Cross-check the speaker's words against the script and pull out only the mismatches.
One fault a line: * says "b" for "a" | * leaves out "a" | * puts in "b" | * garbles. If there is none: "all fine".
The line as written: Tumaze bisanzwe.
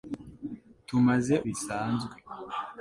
all fine